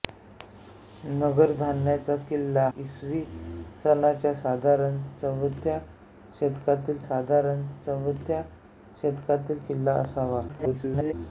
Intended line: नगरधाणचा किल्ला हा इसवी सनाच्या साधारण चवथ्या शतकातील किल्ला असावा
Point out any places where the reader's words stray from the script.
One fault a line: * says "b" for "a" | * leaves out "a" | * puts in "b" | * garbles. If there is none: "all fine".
* leaves out "हा"
* puts in "साधारण चवथ्या शतकातील"
* garbles